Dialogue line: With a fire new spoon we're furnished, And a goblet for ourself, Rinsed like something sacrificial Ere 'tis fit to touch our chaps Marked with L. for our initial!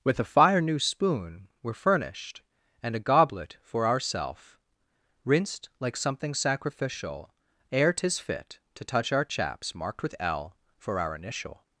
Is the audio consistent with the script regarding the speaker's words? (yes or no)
yes